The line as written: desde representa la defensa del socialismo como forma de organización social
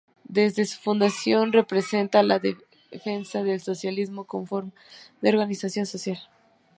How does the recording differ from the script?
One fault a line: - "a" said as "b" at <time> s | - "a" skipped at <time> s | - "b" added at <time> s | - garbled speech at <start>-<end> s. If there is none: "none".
- "su fundación" added at 0.7 s